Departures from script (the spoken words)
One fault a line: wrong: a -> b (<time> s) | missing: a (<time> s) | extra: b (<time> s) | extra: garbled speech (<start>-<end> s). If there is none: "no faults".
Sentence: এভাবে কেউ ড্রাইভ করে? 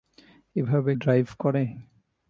missing: কেউ (0.9 s)